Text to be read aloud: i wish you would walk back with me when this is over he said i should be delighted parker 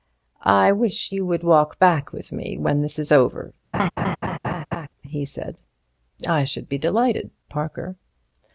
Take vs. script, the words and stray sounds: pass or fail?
fail